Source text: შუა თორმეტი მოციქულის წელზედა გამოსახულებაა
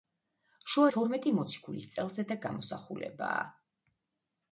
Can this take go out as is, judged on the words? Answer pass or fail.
pass